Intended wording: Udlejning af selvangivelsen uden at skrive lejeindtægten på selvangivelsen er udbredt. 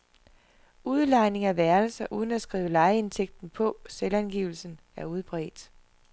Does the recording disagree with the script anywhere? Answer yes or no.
yes